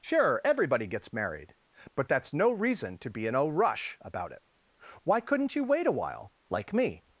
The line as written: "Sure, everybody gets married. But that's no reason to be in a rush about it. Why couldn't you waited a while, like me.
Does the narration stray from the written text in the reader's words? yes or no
yes